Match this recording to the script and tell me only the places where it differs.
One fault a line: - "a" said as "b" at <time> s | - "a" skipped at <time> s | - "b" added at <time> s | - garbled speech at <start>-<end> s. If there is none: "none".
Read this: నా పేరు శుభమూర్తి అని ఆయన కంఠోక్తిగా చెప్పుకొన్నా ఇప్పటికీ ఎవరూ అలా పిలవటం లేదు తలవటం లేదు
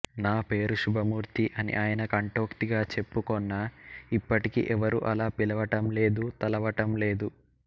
none